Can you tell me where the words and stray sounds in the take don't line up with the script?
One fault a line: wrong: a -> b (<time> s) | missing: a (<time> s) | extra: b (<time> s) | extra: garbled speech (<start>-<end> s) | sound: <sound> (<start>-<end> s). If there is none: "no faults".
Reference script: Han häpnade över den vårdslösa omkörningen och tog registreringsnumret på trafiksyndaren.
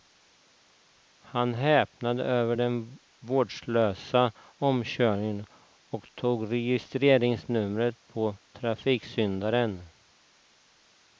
no faults